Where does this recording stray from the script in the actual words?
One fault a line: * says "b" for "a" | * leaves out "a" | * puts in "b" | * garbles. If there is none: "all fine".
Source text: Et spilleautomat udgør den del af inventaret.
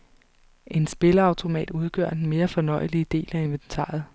* says "En" for "Et"
* puts in "mere fornøjelige"